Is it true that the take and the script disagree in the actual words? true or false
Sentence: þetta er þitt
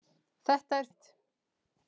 false